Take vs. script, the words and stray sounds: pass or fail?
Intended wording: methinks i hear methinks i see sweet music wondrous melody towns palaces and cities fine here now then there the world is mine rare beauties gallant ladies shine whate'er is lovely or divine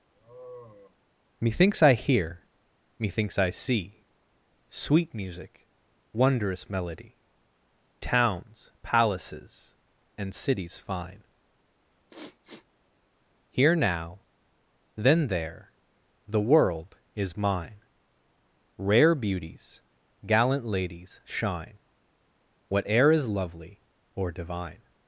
fail